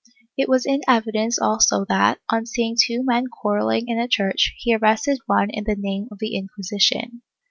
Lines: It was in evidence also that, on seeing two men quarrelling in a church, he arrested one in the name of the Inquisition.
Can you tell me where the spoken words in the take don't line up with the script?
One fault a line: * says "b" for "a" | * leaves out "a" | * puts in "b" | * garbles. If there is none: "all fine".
all fine